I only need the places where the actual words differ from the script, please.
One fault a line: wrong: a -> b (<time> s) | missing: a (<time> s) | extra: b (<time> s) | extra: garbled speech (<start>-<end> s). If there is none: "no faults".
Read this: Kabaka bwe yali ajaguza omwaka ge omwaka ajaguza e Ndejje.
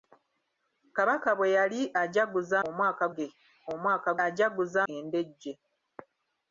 no faults